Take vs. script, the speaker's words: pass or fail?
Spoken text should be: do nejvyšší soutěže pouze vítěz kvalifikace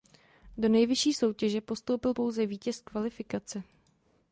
fail